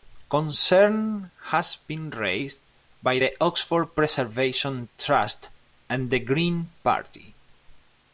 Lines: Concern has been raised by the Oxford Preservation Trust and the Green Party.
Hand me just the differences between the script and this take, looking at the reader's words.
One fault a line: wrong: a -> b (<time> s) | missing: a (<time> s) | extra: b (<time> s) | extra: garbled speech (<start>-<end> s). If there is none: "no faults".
no faults